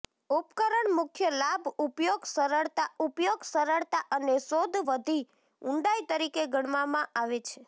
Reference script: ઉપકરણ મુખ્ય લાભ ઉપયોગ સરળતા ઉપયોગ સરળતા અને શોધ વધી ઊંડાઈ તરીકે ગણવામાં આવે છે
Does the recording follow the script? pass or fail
pass